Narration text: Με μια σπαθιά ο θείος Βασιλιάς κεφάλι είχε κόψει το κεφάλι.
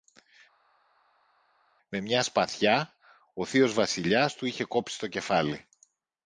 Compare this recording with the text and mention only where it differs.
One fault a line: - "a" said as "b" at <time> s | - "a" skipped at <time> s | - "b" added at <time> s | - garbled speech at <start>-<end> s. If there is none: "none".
- "κεφάλι" said as "του" at 4.4 s